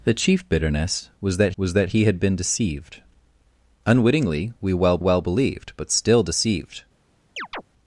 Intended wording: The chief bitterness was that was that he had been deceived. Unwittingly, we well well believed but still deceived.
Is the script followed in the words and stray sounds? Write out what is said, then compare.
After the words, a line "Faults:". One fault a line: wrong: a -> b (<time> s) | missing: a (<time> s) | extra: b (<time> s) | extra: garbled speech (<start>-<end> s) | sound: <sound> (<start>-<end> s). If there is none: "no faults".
The chief bitterness was that was that he had been deceived. Unwittingly, we well well believed but still deceived.
Faults:
sound: chirp (7.4-7.6 s)